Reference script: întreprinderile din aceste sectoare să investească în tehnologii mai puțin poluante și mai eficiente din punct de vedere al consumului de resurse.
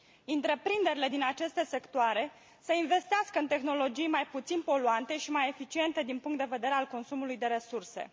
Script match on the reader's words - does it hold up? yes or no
yes